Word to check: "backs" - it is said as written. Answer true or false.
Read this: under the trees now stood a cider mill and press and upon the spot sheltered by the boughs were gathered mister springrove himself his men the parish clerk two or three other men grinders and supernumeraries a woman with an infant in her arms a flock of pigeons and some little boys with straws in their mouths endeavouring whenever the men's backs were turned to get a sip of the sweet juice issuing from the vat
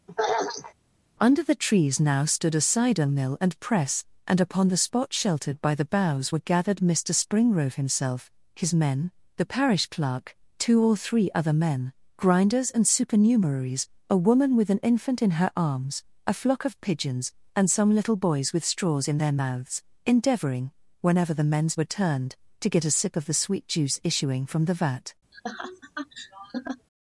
false